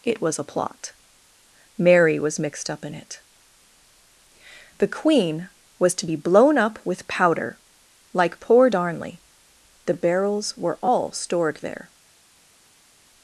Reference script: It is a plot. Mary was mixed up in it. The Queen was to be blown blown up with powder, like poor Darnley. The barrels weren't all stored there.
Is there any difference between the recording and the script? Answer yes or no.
yes